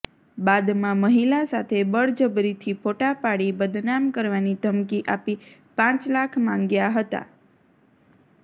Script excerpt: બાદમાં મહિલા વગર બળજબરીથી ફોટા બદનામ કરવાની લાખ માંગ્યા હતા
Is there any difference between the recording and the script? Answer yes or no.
yes